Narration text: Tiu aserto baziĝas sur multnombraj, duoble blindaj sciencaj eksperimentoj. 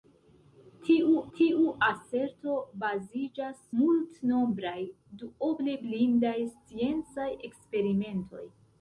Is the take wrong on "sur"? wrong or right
wrong